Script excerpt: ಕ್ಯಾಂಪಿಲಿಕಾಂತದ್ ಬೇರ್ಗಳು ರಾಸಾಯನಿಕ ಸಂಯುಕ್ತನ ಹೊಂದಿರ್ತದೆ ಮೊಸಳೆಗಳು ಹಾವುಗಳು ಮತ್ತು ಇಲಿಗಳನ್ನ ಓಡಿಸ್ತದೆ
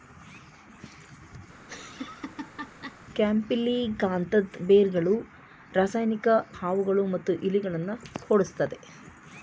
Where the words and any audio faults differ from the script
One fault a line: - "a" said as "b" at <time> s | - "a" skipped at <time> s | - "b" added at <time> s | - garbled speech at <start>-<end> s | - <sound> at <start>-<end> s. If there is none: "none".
- laugh at 1.6-3.0 s
- "ಸಂಯುಕ್ತನ ಹೊಂದಿರ್ತದೆ ಮೊಸಳೆಗಳು" skipped at 6.3 s